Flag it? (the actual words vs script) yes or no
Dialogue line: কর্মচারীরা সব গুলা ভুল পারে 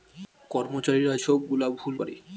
no